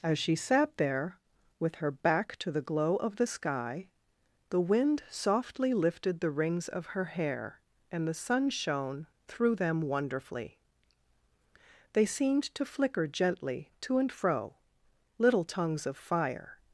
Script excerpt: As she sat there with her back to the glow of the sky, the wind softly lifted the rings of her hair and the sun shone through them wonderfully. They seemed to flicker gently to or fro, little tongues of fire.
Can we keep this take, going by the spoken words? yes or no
no